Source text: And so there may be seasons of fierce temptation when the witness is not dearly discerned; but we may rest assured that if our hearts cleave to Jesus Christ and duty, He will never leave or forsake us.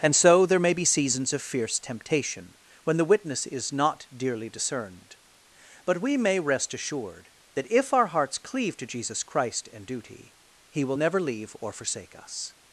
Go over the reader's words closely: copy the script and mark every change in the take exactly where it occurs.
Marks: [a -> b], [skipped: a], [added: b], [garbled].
And so there may be seasons of fierce temptation when the witness is not dearly discerned; but we may rest assured that if our hearts cleave to Jesus Christ and duty, He will never leave or forsake us.